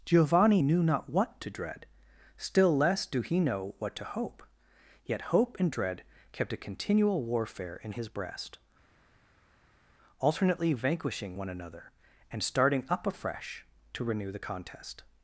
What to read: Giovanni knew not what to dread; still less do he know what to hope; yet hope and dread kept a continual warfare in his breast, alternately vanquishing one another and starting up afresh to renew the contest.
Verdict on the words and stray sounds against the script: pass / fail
pass